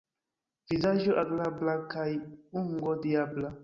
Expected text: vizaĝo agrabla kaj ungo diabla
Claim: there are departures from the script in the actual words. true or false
false